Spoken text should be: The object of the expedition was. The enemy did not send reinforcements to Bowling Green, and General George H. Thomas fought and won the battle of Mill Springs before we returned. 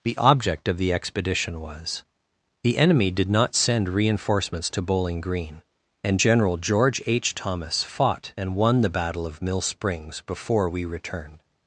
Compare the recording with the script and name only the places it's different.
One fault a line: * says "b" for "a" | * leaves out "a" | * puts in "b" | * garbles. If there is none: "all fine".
all fine